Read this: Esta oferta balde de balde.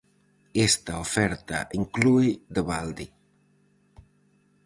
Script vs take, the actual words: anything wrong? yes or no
yes